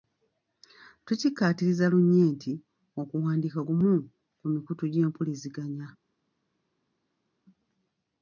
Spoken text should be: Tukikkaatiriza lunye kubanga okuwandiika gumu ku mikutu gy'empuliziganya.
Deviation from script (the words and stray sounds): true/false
true